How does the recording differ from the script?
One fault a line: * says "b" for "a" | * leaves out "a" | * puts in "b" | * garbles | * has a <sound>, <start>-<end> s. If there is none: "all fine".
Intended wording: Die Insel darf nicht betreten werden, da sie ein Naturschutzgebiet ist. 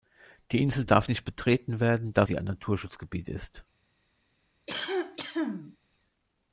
* has a cough, 4.7-5.8 s